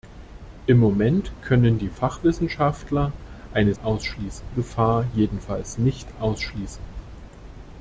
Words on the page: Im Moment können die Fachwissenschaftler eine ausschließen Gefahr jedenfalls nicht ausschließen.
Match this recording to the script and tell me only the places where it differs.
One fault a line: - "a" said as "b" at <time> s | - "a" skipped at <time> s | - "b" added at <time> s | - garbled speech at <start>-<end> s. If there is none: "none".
none